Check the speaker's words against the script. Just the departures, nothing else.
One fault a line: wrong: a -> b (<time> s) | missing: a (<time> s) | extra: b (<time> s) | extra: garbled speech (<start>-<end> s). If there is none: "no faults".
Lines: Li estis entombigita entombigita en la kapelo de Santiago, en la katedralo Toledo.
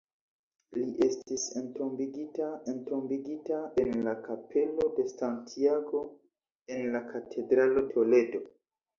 no faults